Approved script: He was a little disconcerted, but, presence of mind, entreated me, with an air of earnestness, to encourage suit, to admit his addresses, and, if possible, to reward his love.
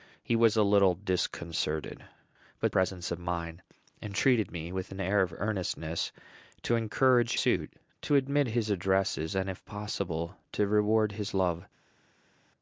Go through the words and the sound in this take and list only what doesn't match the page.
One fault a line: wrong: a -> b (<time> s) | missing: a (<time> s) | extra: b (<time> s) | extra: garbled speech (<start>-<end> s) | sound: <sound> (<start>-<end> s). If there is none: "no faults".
no faults